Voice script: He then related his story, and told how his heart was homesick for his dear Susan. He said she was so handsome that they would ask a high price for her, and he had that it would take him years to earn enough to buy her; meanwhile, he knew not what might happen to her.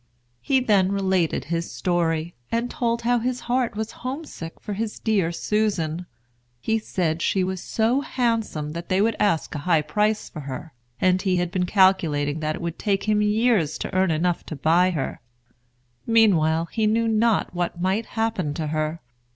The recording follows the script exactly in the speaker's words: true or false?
false